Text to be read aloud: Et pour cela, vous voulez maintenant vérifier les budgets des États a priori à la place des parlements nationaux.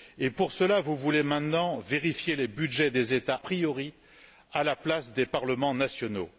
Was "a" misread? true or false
true